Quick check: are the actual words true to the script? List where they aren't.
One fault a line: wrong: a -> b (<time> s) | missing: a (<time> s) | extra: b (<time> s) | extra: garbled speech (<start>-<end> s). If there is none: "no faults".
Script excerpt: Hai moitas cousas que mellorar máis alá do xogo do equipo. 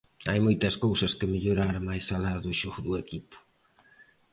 no faults